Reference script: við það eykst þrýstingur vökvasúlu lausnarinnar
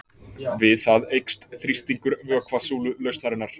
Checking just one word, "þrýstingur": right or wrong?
right